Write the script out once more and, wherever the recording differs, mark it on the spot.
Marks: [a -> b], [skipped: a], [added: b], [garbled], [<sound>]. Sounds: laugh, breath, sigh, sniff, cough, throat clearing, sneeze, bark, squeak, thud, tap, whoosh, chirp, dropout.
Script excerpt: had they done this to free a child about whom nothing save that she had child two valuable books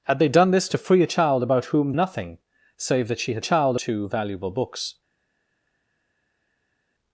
had they done this to free a child about whom nothing save that she had child two valuable books